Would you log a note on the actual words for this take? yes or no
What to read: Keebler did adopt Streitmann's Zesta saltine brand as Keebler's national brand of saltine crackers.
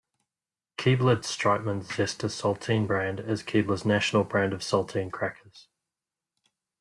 yes